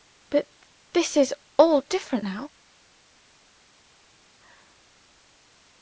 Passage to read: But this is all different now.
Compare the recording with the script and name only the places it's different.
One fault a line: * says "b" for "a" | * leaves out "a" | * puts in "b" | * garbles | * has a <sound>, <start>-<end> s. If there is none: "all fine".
all fine